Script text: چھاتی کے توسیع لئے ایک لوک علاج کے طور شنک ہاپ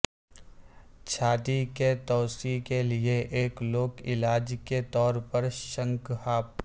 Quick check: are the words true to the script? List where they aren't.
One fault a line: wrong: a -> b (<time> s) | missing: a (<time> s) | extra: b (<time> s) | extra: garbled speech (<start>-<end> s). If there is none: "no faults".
extra: کے (2.6 s)
extra: پر (5.3 s)